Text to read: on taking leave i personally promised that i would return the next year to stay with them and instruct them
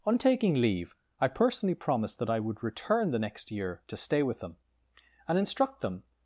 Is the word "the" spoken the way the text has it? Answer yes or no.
yes